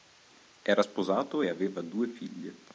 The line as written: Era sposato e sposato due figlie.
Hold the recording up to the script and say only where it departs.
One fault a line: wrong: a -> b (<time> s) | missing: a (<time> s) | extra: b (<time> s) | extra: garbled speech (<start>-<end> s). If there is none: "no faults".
wrong: sposato -> aveva (1.5 s)